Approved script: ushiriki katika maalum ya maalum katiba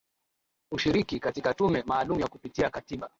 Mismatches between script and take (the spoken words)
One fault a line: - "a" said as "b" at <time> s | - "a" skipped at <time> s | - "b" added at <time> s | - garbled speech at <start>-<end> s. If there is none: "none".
- "tume" added at 1.5 s
- "maalum" said as "kupitia" at 2.3 s